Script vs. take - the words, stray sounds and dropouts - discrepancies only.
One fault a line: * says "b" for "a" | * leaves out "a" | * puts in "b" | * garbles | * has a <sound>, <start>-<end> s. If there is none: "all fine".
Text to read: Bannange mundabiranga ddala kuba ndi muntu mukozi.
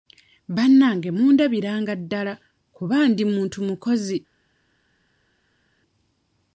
all fine